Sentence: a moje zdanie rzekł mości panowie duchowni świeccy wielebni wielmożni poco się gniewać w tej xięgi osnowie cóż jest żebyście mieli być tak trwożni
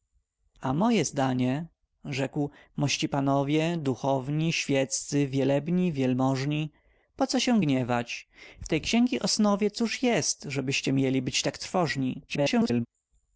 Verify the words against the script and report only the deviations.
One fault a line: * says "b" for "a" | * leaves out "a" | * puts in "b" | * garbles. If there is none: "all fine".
* garbles